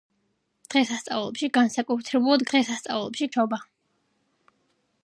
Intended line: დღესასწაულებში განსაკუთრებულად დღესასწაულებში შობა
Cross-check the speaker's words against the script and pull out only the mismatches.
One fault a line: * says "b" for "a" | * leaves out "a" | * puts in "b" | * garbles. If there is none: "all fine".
all fine